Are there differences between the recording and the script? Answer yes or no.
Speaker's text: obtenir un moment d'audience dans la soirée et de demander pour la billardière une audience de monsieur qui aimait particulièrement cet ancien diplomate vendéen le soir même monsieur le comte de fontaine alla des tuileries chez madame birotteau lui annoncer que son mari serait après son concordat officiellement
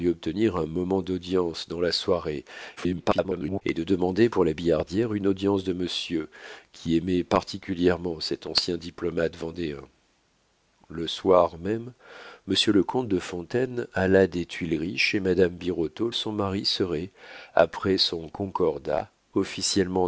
yes